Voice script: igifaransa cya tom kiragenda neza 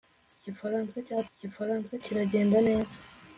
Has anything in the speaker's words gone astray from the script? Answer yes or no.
yes